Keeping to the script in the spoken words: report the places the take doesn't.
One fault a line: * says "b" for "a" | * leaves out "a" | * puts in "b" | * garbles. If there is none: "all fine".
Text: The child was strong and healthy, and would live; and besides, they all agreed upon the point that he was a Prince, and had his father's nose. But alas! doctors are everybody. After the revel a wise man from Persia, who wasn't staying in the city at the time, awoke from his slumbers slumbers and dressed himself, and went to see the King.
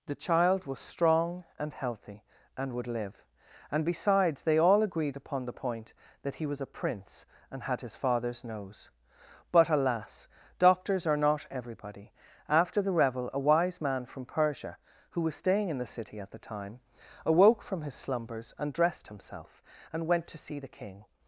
* puts in "not"
* says "was" for "wasn't"
* leaves out "slumbers"